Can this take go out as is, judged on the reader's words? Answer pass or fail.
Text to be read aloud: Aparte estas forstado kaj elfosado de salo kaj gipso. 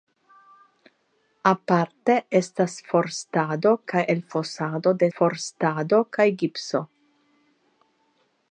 fail